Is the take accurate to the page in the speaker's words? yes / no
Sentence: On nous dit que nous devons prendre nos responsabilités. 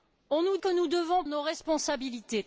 no